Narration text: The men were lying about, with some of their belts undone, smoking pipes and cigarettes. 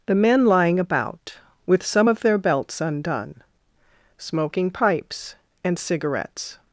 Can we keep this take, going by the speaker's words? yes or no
no